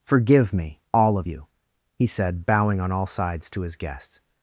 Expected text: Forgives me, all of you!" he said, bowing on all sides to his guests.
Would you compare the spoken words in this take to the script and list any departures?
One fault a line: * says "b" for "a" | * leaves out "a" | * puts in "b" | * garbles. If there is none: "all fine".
* says "Forgive" for "Forgives"